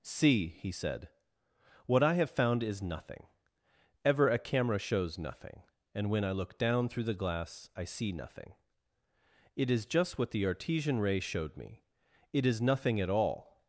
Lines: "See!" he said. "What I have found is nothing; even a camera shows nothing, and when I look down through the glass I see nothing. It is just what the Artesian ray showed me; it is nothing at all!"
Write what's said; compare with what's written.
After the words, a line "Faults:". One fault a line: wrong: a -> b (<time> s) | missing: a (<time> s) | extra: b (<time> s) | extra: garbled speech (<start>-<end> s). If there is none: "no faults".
"See!" he said. "What I have found is nothing; ever a camera shows nothing, and when I look down through the glass I see nothing. It is just what the Artesian ray showed me; it is nothing at all!"
Faults:
wrong: even -> ever (4.0 s)